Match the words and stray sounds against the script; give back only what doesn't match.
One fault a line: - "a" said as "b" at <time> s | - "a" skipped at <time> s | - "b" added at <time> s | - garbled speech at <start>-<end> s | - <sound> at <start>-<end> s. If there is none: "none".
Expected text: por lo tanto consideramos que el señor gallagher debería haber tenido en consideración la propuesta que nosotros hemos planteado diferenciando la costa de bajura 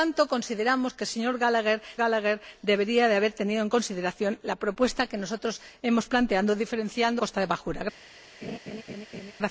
- "gallagher" added at 1.9 s
- "la" skipped at 7.2 s
- laugh at 8.4-9.3 s